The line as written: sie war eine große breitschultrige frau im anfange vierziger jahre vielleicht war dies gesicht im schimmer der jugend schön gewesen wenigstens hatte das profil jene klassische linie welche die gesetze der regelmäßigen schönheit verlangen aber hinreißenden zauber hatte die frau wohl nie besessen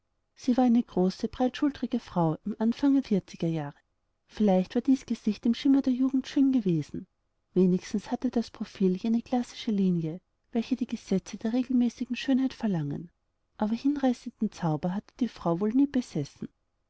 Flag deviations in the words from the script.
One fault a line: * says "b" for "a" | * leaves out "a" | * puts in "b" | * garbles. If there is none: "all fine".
all fine